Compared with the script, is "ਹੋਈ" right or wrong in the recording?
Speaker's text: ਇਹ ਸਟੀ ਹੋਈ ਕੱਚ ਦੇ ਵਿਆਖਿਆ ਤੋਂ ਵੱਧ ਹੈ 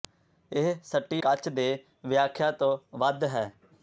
wrong